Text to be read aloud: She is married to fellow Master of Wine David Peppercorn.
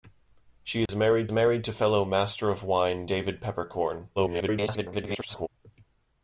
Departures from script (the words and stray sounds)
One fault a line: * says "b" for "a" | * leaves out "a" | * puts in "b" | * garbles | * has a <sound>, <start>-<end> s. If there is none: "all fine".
* has a dropout, 0.9-0.9 s
* puts in "married"
* garbles